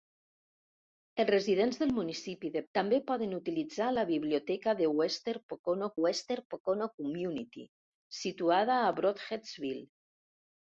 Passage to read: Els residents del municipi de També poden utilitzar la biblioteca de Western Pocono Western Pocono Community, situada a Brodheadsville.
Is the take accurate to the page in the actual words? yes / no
yes